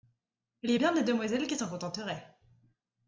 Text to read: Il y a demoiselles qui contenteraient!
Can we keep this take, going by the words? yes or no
no